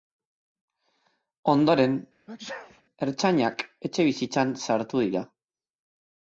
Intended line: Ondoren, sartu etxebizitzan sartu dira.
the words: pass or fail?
fail